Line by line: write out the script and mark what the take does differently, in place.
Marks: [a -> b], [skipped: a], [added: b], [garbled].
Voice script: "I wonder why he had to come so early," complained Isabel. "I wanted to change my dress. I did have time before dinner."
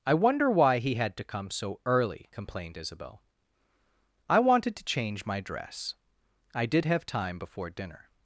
"I wonder why he had to come so early," complained Isabel. "I wanted to change my dress. I did have time before dinner."